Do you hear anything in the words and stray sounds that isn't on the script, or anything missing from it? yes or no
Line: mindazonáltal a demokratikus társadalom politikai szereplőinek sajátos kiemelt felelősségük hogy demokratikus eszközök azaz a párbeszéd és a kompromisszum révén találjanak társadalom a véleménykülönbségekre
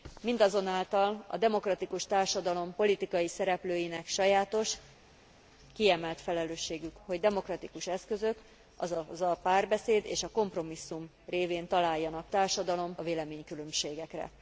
no